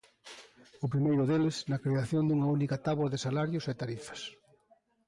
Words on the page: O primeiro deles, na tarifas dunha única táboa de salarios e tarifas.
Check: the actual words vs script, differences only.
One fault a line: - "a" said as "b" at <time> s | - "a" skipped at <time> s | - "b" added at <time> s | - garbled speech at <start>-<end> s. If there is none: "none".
- "tarifas" said as "creación" at 1.8 s